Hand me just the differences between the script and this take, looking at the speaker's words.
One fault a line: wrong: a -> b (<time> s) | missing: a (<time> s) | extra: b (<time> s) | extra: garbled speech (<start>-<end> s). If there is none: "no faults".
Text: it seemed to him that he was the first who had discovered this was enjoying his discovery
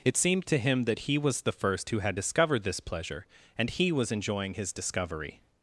extra: pleasure and he (2.8 s)